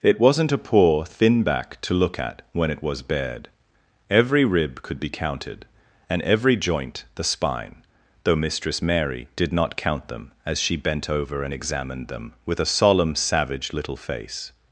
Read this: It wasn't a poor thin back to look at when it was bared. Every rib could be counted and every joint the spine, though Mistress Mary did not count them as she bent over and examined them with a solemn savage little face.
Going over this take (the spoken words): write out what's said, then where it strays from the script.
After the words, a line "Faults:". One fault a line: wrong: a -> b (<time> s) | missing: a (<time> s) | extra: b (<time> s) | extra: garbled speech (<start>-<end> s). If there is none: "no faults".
It wasn't a poor thin back to look at when it was bared. Every rib could be counted and every joint the spine, though Mistress Mary did not count them as she bent over and examined them with a solemn savage little face.
Faults:
no faults